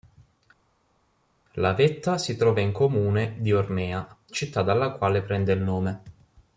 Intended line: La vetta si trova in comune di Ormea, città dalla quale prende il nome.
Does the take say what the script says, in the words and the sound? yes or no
yes